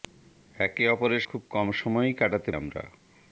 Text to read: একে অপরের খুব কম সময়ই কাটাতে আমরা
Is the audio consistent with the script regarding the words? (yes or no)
yes